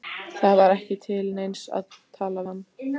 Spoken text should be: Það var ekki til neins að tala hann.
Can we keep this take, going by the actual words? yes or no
yes